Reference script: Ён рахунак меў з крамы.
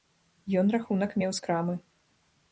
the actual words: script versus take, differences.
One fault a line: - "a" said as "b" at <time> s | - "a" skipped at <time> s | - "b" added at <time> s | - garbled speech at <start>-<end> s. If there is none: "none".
none